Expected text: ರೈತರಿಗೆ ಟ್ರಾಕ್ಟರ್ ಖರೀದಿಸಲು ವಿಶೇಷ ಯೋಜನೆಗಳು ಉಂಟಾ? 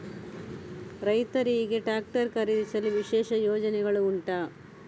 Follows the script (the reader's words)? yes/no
yes